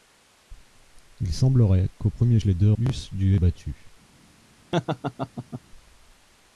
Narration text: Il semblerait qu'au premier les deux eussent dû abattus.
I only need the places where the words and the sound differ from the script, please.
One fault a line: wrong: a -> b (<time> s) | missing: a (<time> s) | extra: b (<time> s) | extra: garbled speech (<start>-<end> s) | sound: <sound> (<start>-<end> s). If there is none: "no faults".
sound: laugh (4.7-5.6 s)